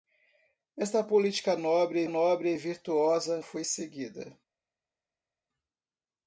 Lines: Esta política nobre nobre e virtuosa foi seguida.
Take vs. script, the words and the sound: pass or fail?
pass